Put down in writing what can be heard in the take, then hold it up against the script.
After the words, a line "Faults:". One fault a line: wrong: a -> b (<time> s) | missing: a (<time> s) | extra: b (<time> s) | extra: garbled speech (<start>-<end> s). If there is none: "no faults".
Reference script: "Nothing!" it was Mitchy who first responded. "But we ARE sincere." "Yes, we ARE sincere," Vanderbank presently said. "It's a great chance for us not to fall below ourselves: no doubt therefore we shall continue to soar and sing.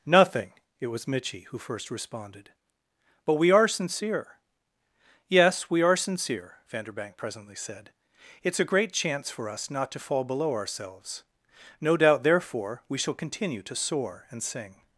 "Nothing!" it was Mitchy who first responded. "But we ARE sincere." "Yes, we ARE sincere," Vanderbank presently said. "It's a great chance for us not to fall below ourselves: no doubt therefore we shall continue to soar and sing.
Faults:
no faults